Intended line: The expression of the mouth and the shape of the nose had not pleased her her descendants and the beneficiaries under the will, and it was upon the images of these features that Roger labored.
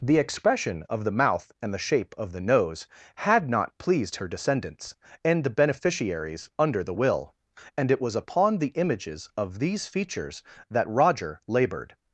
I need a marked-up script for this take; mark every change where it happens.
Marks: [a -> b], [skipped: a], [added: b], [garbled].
The expression of the mouth and the shape of the nose had not pleased her [skipped: her] descendants and the beneficiaries under the will, and it was upon the images of these features that Roger labored.